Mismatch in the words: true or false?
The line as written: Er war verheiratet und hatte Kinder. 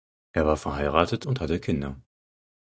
false